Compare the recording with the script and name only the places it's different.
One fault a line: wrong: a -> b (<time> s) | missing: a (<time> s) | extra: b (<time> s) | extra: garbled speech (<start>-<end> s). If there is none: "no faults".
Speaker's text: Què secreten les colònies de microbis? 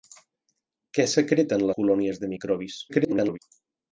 missing: les (1.7 s)
extra: garbled speech (2.9-3.4 s)